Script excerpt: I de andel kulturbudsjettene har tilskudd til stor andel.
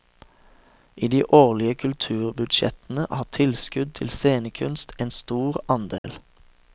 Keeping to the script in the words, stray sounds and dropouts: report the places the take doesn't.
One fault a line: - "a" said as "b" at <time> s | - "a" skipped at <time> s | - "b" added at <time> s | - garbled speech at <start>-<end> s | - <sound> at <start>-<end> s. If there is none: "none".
- "andel" said as "årlige" at 1.3 s
- "scenekunst en" added at 4.1 s
- dropout at 6.0-6.0 s